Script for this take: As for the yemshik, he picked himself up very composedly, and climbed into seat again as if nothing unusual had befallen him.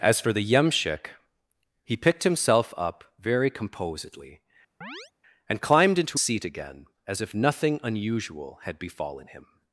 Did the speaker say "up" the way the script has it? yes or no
yes